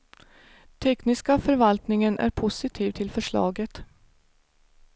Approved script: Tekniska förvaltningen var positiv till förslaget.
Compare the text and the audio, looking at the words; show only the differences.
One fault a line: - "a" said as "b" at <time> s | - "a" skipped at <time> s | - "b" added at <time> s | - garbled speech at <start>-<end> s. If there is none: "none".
- "var" said as "är" at 2.2 s